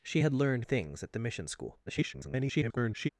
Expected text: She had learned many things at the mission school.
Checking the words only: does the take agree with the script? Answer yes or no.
no